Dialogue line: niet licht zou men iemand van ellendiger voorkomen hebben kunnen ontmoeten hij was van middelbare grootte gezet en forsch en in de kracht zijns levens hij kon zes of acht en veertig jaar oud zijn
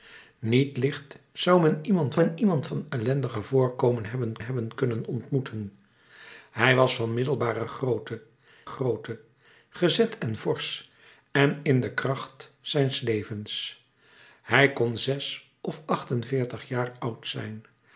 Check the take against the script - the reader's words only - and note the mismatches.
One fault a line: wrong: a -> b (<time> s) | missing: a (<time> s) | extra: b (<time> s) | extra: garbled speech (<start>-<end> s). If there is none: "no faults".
extra: men iemand (2.2 s)
extra: hebben (4.4 s)
extra: grootte (8.6 s)